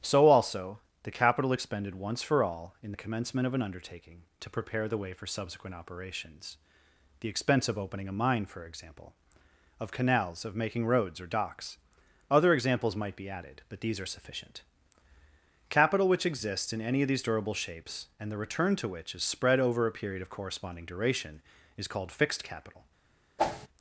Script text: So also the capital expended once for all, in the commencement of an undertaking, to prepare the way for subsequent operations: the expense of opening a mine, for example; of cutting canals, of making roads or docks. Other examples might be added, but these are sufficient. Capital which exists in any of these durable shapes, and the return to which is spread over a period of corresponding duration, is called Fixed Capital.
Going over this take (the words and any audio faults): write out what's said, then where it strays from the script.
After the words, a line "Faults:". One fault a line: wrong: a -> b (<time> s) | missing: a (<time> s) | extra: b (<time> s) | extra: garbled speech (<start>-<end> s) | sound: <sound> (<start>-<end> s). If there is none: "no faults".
So also the capital expended once for all, in the commencement of an undertaking, to prepare the way for subsequent operations: the expense of opening a mine, for example; of canals, of making roads or docks. Other examples might be added, but these are sufficient. Capital which exists in any of these durable shapes, and the return to which is spread over a period of corresponding duration, is called Fixed Capital.
Faults:
missing: cutting (9.9 s)
sound: whoosh (23.4-23.7 s)